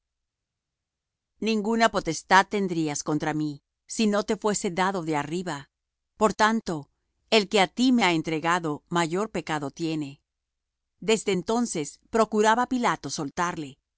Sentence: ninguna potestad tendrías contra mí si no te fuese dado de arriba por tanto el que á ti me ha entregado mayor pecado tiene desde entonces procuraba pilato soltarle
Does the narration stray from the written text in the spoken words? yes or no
no